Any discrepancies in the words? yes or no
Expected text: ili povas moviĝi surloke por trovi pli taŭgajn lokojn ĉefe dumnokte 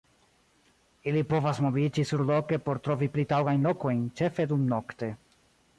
no